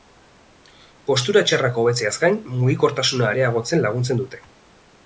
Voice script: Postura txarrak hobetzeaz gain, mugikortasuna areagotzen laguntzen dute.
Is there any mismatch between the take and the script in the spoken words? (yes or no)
no